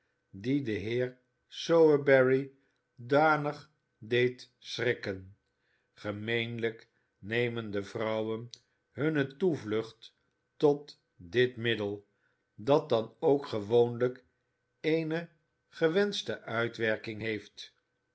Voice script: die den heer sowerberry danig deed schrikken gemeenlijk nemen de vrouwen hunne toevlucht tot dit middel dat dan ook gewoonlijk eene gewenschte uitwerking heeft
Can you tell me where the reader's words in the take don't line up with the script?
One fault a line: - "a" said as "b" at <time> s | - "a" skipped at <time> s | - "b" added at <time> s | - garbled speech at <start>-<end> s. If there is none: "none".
none